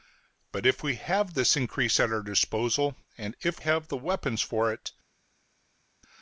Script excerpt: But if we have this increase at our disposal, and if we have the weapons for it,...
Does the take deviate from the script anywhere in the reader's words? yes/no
yes